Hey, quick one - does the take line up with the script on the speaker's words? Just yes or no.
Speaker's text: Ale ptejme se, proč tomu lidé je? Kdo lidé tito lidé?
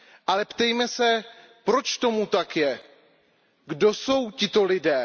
no